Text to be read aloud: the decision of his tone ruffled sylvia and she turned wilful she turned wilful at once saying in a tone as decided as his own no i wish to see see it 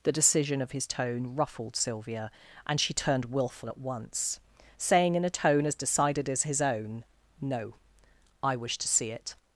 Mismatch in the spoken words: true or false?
true